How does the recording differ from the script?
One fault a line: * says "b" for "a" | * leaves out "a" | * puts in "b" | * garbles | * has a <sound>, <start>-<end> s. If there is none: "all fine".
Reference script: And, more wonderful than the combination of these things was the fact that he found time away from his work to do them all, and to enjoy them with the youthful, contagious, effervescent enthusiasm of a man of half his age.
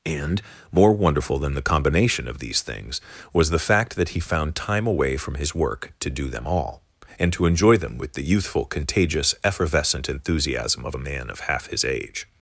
all fine